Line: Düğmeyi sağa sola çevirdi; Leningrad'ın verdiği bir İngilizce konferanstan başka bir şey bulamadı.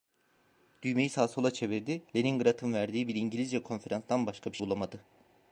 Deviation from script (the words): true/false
true